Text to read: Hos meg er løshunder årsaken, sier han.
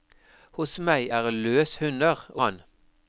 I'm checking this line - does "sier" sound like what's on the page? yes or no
no